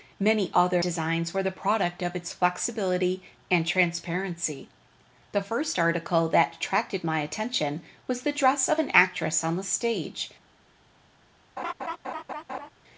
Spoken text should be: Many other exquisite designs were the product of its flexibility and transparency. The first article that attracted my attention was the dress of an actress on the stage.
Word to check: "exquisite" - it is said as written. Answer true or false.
false